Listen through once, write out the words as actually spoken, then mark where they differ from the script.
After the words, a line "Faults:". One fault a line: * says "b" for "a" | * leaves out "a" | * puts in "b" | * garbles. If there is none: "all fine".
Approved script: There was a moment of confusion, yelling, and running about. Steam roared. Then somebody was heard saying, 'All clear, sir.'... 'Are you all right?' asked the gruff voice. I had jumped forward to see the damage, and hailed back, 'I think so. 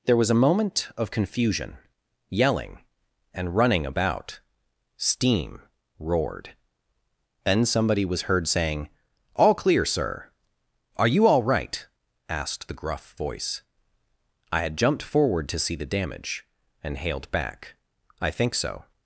There was a moment of confusion, yelling, and running about. Steam roared. Then somebody was heard saying, 'All clear, sir.'... 'Are you all right?' asked the gruff voice. I had jumped forward to see the damage, and hailed back, 'I think so.
Faults:
all fine